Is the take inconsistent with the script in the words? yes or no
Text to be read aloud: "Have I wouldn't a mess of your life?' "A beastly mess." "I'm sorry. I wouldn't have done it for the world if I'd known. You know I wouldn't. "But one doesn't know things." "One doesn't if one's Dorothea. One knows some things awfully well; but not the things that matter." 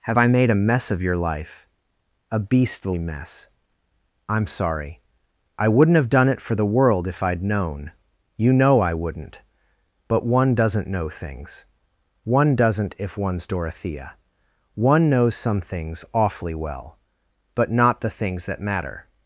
yes